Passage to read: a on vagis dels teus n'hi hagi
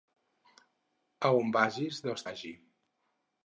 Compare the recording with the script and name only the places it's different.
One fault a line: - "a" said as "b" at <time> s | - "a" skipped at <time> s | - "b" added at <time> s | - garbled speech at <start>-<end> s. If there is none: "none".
- "teus n'hi" skipped at 2.2 s